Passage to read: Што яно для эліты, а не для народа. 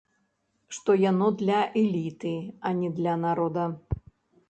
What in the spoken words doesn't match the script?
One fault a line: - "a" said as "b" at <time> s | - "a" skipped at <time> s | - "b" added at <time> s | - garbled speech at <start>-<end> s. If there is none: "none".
none